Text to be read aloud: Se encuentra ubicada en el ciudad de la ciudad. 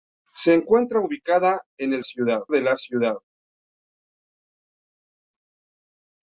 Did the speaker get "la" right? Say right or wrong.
right